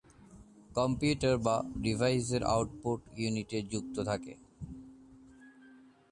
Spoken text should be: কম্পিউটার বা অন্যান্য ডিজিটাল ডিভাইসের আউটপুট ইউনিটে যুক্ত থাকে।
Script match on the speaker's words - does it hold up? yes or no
no